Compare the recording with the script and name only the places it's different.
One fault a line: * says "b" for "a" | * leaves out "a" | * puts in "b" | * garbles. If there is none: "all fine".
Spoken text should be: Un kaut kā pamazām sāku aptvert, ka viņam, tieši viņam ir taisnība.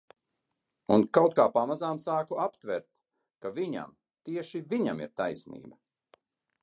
all fine